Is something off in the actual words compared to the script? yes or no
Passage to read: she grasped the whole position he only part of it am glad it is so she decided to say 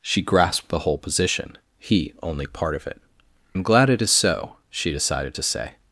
no